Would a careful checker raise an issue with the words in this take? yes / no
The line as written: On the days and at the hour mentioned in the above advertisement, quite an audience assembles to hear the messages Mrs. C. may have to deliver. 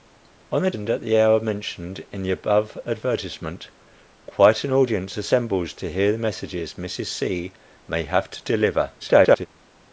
yes